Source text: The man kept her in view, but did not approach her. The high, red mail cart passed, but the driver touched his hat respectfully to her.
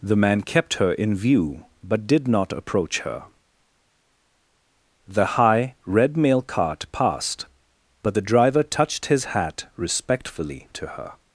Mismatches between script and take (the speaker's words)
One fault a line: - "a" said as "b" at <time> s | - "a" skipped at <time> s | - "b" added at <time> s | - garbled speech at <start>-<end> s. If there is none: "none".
none